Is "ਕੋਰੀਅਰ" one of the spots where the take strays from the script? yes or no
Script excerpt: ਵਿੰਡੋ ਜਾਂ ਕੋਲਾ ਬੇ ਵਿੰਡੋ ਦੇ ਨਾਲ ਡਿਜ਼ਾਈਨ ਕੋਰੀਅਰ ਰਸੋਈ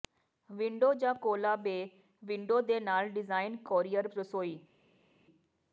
no